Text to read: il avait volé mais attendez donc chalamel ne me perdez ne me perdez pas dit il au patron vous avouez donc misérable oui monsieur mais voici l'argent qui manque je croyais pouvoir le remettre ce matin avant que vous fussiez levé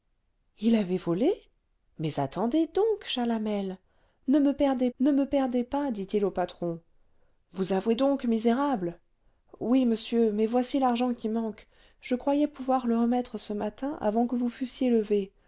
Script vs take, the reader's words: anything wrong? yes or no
no